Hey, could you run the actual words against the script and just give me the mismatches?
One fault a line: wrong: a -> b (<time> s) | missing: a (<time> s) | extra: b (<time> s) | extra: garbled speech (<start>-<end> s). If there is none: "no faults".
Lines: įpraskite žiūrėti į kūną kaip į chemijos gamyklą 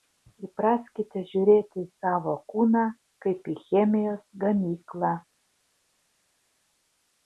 extra: savo (2.0 s)